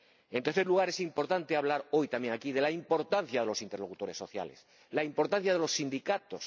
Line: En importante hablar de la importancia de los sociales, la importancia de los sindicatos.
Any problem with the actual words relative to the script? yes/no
yes